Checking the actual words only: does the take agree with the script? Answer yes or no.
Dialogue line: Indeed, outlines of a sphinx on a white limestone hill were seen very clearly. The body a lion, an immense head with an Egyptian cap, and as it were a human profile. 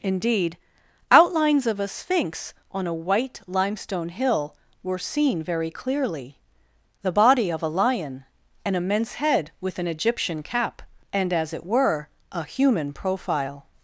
no